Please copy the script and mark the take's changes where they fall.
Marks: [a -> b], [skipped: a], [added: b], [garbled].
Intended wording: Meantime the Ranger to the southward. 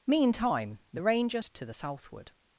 Meantime the Ranger to the southward.